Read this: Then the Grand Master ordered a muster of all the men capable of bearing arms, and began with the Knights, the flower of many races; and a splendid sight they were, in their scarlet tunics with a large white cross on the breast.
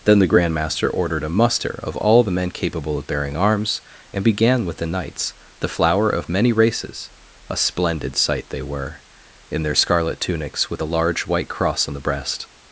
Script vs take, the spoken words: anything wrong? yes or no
yes